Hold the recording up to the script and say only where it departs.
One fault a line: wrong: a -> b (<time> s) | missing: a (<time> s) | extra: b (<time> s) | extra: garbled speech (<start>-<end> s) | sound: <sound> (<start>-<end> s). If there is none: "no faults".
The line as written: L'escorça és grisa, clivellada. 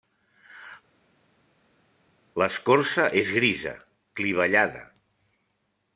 no faults